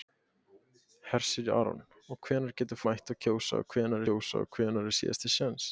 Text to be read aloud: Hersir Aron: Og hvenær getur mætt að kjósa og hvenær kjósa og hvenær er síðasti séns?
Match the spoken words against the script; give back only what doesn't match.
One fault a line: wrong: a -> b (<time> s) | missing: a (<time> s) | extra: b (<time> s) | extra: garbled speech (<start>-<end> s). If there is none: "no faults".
no faults